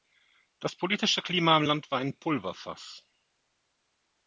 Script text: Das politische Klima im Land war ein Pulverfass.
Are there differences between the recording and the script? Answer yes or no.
no